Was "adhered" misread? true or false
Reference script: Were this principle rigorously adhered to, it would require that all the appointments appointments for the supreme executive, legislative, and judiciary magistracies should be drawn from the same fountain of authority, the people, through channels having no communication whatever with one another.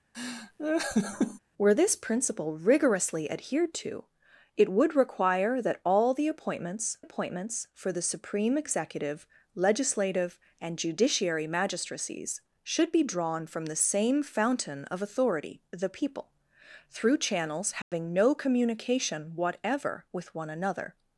false